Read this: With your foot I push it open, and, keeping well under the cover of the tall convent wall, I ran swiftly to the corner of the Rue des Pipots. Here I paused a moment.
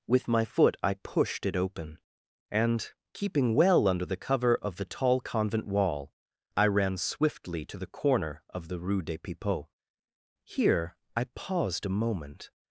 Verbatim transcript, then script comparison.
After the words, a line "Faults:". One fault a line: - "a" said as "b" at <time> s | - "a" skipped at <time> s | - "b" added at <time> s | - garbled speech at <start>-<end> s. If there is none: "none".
With my foot I pushed it open, and, keeping well under the cover of the tall convent wall, I ran swiftly to the corner of the Rue des Pipots. Here I paused a moment.
Faults:
- "your" said as "my" at 0.3 s
- "push" said as "pushed" at 1.0 s